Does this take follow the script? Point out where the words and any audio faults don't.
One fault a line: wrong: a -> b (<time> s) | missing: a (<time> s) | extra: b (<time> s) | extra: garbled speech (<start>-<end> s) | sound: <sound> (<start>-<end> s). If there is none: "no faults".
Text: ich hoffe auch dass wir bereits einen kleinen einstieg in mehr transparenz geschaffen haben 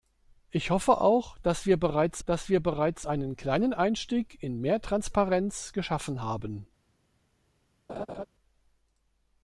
extra: dass wir bereits (2.2 s)
sound: laugh (7.9-8.3 s)